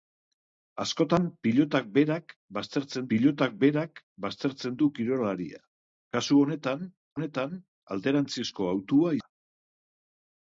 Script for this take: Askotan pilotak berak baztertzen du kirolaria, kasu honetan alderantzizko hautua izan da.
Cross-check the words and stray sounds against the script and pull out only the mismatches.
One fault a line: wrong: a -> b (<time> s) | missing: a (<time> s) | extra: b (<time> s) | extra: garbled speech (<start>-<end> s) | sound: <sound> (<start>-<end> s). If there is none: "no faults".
extra: pilotak berak baztertzen (3.1 s)
extra: honetan (7.2 s)
missing: izan (9.2 s)